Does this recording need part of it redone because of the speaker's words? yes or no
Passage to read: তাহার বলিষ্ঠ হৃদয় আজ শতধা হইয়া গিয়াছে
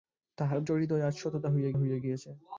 yes